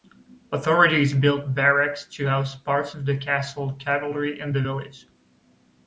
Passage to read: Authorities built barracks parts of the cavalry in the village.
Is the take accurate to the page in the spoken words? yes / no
no